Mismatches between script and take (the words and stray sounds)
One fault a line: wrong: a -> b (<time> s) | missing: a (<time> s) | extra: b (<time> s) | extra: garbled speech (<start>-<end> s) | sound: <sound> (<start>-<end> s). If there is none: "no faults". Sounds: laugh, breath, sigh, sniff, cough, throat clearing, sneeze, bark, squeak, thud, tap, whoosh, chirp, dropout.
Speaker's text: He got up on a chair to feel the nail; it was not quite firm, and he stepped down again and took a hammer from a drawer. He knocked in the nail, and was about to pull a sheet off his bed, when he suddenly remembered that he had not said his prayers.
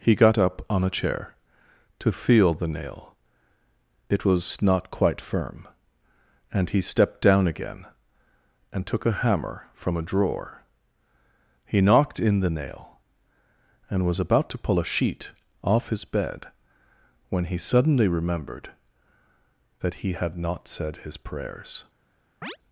sound: chirp (22.4-22.6 s)